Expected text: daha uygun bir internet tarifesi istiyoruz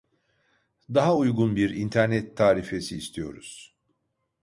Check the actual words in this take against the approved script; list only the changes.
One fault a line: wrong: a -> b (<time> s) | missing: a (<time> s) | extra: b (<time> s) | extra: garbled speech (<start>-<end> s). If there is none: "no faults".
no faults